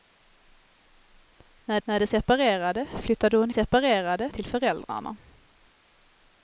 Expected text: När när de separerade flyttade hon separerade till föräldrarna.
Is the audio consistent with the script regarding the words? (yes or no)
yes